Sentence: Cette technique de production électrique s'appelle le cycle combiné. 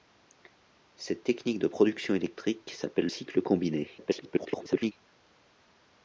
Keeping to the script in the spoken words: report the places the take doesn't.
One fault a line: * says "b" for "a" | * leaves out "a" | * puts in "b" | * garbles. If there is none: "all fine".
* leaves out "le"
* garbles